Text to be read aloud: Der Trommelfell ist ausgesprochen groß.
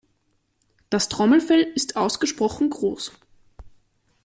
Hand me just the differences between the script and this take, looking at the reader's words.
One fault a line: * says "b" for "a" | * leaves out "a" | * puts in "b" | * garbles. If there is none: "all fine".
* says "Das" for "Der"